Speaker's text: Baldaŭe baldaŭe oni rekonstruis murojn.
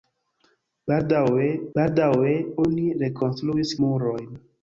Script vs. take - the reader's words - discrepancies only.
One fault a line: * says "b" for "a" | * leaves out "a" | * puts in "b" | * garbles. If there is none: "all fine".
all fine